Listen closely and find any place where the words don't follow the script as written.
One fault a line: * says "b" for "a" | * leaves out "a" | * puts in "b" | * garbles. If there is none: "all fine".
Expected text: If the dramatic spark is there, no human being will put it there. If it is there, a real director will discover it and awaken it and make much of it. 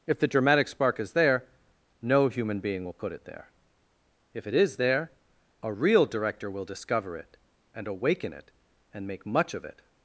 all fine